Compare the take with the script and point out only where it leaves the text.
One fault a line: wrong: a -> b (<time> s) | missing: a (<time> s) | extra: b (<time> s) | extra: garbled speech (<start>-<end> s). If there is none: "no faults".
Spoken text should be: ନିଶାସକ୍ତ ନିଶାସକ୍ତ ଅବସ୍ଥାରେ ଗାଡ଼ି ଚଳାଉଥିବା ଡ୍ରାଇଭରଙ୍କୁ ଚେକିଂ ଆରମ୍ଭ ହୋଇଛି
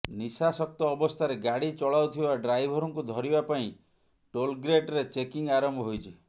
missing: ନିଶାସକ୍ତ (0.9 s)
extra: ଧରିବା ପାଇଁ ଟୋଲ୍ଗେଟ୍ରେ (3.1 s)